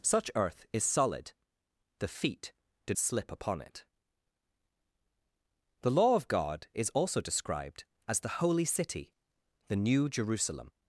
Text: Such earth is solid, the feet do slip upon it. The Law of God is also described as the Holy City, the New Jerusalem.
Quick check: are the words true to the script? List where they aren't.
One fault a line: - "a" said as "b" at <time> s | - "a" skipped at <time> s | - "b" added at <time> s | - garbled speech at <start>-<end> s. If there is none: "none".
none